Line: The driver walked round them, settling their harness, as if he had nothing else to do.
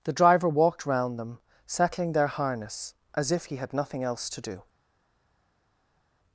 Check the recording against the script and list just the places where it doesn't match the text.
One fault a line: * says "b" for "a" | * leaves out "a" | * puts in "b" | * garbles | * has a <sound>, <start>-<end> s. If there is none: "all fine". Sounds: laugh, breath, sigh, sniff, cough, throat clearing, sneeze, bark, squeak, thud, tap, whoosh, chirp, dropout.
all fine